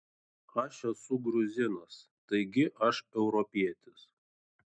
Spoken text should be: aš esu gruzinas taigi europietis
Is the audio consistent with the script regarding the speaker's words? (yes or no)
no